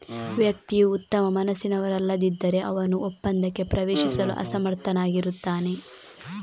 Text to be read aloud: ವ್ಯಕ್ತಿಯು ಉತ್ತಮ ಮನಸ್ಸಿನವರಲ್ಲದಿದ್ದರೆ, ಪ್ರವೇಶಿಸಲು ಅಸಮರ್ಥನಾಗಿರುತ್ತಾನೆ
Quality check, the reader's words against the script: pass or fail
fail